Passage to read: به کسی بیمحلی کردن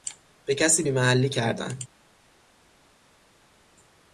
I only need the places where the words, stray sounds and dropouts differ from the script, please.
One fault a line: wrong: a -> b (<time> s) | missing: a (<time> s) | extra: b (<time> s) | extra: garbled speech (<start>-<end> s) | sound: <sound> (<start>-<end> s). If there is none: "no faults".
no faults